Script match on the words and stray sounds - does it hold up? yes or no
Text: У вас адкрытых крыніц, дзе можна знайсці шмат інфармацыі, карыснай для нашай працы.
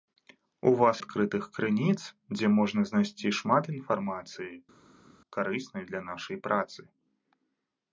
yes